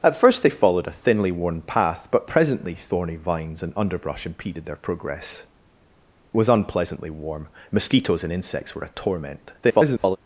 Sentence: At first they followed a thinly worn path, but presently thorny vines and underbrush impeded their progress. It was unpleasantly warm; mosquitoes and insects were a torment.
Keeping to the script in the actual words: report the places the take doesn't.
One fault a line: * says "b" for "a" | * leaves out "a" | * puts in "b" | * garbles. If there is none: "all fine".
* leaves out "It"
* garbles